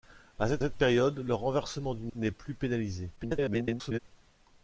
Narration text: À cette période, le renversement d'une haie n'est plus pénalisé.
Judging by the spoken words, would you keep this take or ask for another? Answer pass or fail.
fail